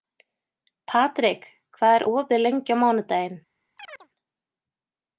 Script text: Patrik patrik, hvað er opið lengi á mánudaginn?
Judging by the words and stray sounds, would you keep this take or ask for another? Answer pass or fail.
fail